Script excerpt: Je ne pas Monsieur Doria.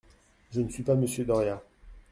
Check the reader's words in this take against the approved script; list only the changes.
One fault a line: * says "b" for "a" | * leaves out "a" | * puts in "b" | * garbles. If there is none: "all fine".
* puts in "suis"